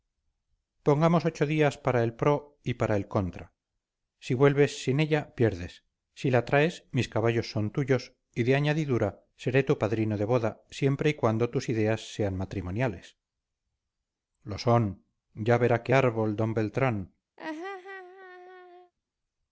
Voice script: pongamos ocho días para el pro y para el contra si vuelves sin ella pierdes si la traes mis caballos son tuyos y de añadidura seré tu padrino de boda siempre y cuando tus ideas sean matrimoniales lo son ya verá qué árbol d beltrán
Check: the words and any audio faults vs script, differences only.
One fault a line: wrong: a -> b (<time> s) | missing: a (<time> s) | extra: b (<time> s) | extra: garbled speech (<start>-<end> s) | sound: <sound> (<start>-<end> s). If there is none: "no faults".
sound: laugh (17.4-18.9 s)